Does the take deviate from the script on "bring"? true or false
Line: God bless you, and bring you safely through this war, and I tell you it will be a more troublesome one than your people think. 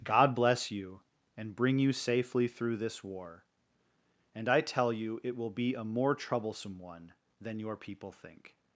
false